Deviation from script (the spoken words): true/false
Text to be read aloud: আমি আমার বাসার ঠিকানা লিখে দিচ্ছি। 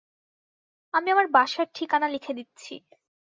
false